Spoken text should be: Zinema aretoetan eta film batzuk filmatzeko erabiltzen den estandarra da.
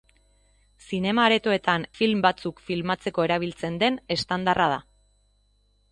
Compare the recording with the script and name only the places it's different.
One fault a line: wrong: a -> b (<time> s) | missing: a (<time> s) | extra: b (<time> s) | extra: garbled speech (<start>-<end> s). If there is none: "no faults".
missing: eta (1.9 s)